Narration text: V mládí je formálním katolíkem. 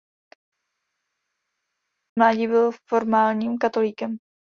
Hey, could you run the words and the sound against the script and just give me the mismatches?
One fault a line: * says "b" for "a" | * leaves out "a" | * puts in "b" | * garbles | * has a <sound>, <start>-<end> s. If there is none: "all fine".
* says "byl" for "je"